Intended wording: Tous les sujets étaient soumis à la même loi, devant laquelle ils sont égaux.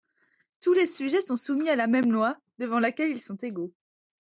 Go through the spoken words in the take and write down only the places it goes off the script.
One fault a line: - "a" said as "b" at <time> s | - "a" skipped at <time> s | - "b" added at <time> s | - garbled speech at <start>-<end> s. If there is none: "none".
- "étaient" said as "sont" at 1.2 s